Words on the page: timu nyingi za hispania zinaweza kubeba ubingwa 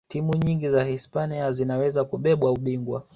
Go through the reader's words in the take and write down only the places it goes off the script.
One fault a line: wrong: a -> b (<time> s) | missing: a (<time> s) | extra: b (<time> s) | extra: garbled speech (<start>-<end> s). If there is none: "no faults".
no faults